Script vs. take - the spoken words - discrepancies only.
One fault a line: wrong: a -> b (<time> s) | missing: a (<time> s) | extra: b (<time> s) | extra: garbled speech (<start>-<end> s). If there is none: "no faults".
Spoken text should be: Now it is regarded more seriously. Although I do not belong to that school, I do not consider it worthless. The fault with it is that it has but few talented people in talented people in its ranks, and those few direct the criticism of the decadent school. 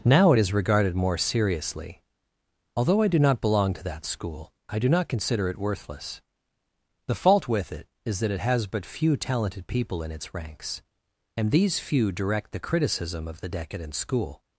missing: talented people in (10.1 s)
wrong: those -> these (11.5 s)